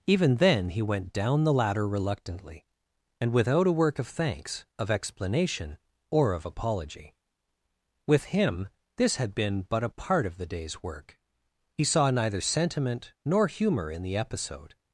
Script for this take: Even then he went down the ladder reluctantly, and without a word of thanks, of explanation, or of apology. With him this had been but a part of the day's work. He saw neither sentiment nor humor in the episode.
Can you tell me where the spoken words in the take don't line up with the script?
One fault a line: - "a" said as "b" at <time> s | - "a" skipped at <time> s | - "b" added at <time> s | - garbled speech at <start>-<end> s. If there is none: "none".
- "word" said as "work" at 3.7 s